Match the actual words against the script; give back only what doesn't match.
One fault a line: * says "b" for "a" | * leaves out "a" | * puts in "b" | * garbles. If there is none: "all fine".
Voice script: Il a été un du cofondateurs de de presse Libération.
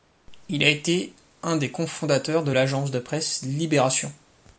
* says "des" for "du"
* puts in "l'Agence"